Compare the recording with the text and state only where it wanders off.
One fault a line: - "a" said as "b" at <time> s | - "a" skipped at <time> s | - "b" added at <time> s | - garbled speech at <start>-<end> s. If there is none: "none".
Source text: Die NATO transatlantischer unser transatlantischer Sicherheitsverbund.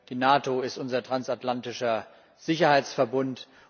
- "transatlantischer" said as "ist" at 0.6 s